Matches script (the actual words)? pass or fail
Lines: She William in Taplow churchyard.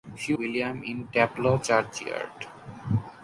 pass